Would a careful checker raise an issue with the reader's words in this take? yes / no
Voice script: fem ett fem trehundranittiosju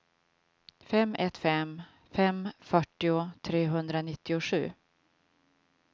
yes